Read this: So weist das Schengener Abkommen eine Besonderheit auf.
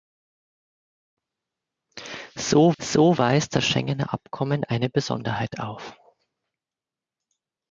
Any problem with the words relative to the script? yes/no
yes